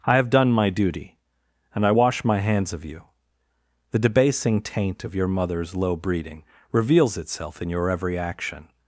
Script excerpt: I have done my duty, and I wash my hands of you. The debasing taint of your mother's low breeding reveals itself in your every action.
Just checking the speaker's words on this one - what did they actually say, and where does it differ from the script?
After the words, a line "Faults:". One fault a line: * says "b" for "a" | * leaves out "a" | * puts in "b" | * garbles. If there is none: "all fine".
I have done my duty, and I wash my hands of you. The debasing taint of your mother's low breeding reveals itself in your every action.
Faults:
all fine